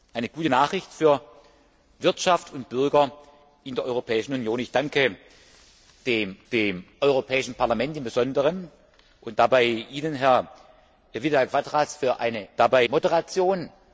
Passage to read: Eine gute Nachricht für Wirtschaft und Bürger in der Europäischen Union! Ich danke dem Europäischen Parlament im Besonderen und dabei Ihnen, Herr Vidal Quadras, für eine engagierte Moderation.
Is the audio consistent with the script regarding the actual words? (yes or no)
no